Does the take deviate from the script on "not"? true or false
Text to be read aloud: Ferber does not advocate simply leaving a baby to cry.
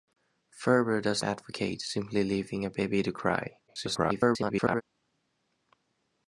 true